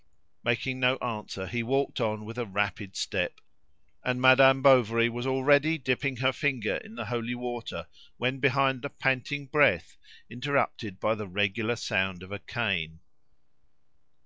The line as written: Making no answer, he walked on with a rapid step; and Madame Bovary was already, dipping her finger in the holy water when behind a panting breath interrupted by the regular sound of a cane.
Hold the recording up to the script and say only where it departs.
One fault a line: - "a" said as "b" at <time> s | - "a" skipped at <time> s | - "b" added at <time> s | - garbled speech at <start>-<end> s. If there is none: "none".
none